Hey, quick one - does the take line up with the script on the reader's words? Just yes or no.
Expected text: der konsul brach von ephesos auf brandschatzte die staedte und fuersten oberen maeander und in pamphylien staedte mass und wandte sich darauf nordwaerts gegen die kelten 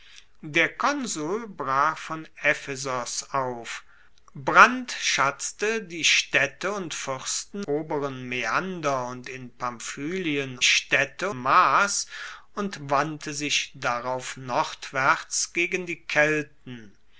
yes